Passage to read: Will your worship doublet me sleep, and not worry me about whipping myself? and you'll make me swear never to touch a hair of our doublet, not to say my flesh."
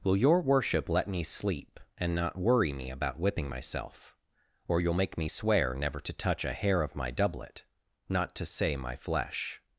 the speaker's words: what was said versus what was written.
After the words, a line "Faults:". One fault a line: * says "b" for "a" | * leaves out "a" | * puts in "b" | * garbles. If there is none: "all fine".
Will your worship let me sleep, and not worry me about whipping myself? or you'll make me swear never to touch a hair of my doublet, not to say my flesh."
Faults:
* says "let" for "doublet"
* says "or" for "and"
* says "my" for "our"